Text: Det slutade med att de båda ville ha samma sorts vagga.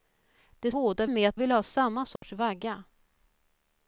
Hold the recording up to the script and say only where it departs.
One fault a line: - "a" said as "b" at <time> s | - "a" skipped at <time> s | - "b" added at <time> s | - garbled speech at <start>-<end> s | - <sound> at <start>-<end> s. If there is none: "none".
- "slutade" said as "båda" at 0.7 s
- "de båda" skipped at 1.4 s
- dropout at 2.2-2.2 s